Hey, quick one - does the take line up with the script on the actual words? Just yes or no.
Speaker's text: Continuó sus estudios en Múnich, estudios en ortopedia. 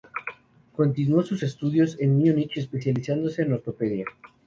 no